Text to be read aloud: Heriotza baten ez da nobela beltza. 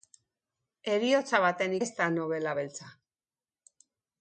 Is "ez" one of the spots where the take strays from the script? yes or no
no